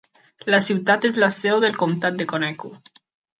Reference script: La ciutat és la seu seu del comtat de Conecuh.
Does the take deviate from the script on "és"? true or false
false